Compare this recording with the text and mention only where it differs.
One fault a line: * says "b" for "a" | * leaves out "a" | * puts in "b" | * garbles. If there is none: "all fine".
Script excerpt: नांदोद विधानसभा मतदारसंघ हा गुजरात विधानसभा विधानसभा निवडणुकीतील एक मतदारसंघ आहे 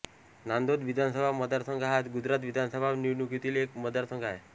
* leaves out "विधानसभा"